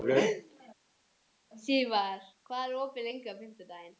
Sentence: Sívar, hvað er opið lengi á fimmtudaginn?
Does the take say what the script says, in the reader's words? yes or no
yes